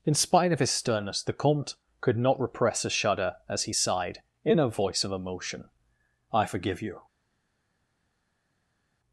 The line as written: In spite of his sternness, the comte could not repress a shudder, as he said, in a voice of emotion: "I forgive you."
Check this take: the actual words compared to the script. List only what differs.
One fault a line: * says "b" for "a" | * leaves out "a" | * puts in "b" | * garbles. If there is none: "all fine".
* says "sighed" for "said"